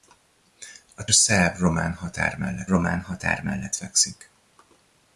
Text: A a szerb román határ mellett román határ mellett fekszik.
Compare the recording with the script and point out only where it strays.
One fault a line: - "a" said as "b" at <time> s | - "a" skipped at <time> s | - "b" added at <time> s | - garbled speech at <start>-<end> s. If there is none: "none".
none